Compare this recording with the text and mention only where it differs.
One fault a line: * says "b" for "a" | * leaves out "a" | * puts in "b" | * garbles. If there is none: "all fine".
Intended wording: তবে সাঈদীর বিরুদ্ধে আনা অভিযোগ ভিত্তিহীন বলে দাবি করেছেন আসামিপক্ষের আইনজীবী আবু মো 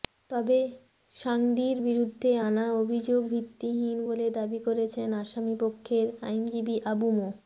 all fine